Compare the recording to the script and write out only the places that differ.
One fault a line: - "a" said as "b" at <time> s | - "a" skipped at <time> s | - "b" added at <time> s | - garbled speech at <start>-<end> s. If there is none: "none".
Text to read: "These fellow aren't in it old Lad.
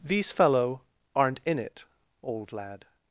none